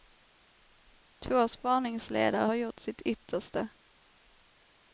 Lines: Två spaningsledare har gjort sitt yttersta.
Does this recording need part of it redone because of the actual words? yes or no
no